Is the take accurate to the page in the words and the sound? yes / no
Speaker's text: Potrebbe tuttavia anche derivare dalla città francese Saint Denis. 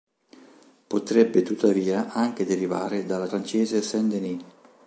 no